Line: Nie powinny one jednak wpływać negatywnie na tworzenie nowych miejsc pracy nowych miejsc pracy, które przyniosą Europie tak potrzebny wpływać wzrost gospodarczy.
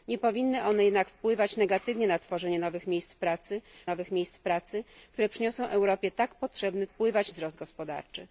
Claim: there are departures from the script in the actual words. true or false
false